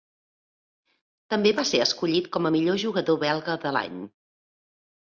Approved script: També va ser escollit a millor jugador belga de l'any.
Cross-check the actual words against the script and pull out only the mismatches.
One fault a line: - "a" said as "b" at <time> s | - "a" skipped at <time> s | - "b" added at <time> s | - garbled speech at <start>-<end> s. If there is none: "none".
- "com" added at 2.4 s